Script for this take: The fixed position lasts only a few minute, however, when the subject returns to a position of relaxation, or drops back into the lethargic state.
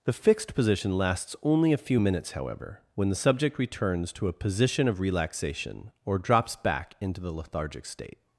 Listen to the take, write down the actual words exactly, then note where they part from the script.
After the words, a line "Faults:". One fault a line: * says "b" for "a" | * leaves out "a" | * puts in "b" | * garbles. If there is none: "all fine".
The fixed position lasts only a few minutes, however, when the subject returns to a position of relaxation, or drops back into the lethargic state.
Faults:
* says "minutes" for "minute"